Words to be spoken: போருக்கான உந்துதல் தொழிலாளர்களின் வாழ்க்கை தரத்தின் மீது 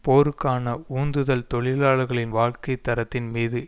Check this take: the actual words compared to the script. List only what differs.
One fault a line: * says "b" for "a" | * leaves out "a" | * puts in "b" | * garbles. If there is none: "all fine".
all fine